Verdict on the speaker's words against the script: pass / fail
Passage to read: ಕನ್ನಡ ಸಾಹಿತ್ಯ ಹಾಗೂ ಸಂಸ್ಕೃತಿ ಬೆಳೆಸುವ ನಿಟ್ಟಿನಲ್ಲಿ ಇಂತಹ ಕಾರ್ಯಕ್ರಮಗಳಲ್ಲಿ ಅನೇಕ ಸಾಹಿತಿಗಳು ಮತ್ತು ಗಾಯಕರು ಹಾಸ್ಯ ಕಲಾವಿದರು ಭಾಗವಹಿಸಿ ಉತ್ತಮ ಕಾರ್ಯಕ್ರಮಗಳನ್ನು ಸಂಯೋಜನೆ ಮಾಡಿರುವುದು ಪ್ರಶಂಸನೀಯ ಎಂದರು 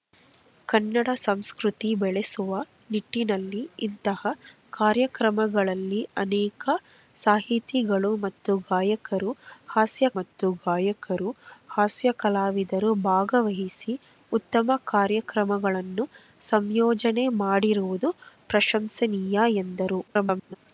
fail